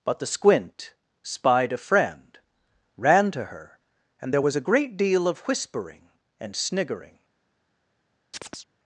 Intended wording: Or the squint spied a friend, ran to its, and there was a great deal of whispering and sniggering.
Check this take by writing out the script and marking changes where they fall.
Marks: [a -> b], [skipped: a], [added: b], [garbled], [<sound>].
[Or -> But] the squint spied a friend, ran to [its, -> her] and there was a great deal of whispering and sniggering. [chirp]